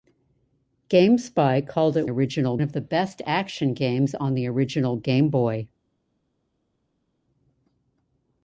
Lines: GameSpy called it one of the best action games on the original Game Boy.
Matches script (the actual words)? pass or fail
fail